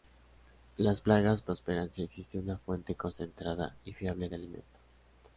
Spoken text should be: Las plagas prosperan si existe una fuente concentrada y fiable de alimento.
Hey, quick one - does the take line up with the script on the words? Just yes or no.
yes